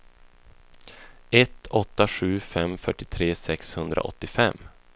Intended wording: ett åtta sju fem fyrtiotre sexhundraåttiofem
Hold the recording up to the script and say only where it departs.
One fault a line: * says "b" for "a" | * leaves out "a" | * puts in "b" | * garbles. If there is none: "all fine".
all fine